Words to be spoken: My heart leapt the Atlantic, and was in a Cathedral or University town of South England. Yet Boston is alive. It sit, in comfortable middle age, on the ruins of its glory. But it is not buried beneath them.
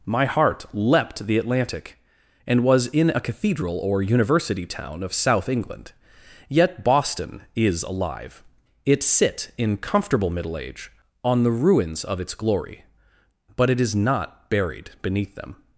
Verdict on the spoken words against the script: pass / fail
pass